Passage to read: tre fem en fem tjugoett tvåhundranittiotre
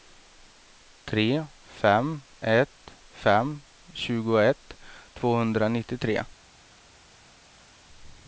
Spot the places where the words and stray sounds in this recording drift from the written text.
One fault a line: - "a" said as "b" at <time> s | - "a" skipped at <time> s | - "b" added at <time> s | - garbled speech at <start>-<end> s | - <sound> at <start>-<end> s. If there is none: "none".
- "en" said as "ett" at 2.4 s